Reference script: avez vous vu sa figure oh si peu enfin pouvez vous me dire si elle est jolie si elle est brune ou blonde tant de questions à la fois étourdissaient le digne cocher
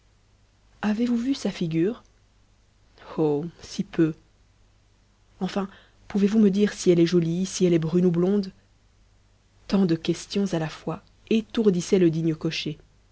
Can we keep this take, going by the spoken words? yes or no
yes